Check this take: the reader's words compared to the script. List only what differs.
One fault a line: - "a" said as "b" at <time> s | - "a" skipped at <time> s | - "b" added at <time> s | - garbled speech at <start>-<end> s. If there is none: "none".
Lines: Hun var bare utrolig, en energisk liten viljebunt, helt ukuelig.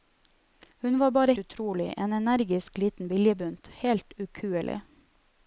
none